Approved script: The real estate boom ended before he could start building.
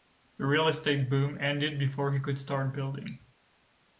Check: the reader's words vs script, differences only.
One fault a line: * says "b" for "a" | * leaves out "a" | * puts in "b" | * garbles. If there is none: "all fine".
all fine